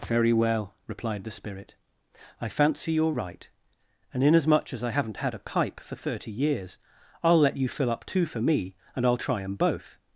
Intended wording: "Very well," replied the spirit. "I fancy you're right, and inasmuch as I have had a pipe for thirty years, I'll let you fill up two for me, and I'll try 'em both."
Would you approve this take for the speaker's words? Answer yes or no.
no